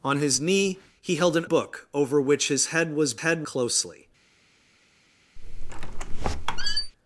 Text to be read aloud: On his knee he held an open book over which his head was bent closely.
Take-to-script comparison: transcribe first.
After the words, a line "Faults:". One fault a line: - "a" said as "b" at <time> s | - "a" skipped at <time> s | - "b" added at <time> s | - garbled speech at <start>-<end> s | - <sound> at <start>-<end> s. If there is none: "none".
On his knee he held an book over which his head was head closely.
Faults:
- "open" skipped at 1.4 s
- "bent" said as "head" at 3.2 s
- squeak at 5.4-6.9 s